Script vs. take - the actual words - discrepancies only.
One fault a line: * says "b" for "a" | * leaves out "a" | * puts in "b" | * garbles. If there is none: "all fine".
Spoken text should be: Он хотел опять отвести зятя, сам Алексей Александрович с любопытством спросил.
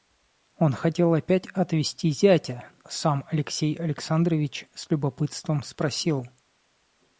all fine